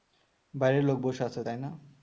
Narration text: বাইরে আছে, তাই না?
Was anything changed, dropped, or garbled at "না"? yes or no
no